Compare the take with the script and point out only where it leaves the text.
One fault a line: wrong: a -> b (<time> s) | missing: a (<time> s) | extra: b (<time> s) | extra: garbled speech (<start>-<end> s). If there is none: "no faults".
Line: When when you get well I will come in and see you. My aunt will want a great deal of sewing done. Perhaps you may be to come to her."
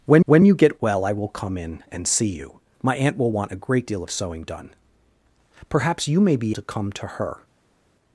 no faults